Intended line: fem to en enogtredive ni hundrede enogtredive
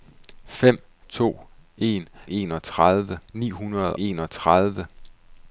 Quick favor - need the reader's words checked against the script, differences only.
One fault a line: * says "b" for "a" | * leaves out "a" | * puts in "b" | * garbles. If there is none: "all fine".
all fine